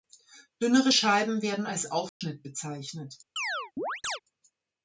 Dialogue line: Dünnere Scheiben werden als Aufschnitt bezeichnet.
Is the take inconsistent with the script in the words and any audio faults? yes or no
yes